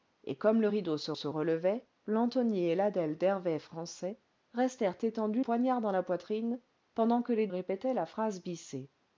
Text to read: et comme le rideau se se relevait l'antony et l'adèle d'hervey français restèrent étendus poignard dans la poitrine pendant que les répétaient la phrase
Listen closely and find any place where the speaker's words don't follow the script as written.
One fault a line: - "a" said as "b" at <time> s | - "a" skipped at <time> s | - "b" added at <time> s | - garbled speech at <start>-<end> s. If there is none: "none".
none